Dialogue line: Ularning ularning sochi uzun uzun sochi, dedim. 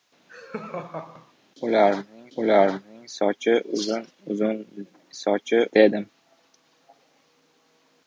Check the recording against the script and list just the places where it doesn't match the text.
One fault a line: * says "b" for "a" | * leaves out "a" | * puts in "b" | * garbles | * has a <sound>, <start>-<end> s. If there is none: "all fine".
* has a laugh, 0.3-1.3 s